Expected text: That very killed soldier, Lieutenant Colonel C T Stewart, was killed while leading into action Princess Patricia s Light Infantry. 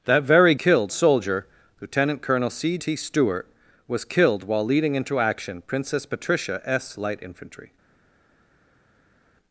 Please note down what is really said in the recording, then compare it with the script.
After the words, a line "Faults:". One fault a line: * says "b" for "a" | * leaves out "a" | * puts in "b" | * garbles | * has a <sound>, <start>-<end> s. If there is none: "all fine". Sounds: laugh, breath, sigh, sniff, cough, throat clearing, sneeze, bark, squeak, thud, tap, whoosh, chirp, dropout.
That very killed soldier, Lieutenant Colonel C T Stewart, was killed while leading into action Princess Patricia s Light Infantry.
Faults:
all fine